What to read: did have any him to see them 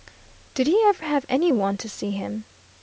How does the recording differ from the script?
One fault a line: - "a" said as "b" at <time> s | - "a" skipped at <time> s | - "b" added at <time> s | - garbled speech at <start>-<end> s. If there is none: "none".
- "he ever" added at 0.7 s
- "him" said as "one" at 1.5 s
- "them" said as "him" at 2.1 s